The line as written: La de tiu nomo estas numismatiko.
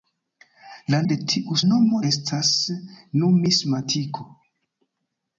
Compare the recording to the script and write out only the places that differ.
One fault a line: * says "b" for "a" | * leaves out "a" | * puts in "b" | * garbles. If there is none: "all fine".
all fine